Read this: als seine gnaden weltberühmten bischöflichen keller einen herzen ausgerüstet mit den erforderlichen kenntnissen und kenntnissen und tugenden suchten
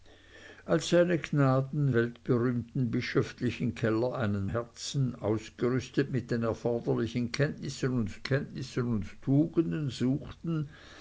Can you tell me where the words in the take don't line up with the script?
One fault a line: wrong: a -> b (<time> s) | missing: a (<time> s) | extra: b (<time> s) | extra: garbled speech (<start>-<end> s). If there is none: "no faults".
no faults